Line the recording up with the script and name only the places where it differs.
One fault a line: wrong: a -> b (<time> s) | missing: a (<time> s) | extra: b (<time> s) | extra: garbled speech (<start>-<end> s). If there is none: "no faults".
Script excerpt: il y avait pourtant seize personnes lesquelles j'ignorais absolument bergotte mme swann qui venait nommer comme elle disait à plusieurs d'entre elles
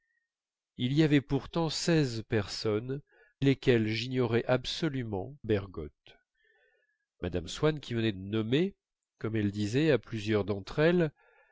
no faults